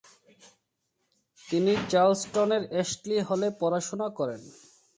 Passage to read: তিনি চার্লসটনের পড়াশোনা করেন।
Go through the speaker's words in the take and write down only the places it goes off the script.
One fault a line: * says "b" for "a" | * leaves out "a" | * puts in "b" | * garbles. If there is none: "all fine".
* puts in "অ্যাশলি হলে"